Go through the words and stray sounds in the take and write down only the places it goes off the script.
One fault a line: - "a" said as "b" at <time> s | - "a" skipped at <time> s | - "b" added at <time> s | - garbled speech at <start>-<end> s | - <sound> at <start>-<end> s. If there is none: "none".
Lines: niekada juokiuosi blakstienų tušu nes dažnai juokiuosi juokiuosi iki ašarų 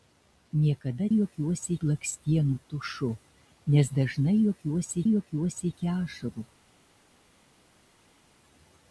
none